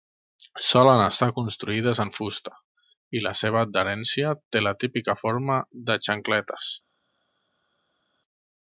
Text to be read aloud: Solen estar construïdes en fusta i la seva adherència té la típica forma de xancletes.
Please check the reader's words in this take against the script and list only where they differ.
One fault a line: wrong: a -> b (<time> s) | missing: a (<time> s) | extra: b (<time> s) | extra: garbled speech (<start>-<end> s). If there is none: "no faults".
no faults